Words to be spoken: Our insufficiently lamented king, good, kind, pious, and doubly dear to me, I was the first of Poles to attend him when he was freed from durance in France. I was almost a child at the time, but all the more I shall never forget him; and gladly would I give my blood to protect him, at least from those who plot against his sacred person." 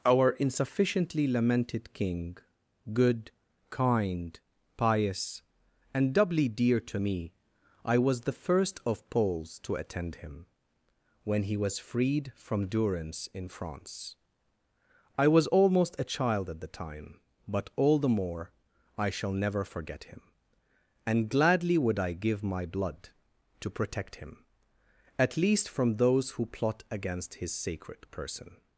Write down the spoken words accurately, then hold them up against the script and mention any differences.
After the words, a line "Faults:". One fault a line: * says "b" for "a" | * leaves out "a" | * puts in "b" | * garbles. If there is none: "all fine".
Our insufficiently lamented king, good, kind, pious, and doubly dear to me, I was the first of Poles to attend him when he was freed from durance in France. I was almost a child at the time, but all the more I shall never forget him; and gladly would I give my blood to protect him, at least from those who plot against his sacred person."
Faults:
all fine